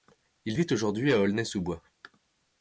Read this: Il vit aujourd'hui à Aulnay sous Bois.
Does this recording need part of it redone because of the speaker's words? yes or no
no